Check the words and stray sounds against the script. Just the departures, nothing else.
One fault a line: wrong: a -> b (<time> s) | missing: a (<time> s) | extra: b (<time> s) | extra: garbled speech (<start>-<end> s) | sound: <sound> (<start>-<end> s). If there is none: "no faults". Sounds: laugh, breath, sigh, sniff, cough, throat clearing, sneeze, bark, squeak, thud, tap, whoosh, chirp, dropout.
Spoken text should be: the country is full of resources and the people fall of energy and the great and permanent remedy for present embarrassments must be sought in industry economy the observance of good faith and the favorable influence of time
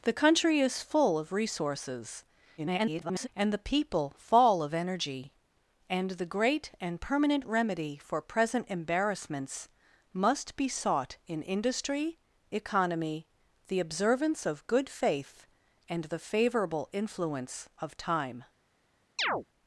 extra: garbled speech (2.6-3.3 s)
sound: chirp (19.2-19.4 s)